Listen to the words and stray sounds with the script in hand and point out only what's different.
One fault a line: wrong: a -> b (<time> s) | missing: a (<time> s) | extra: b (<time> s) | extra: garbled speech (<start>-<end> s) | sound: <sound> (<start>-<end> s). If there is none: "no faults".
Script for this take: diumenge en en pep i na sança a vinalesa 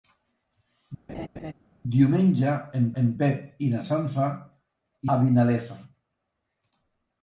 sound: laugh (1.1-1.5 s)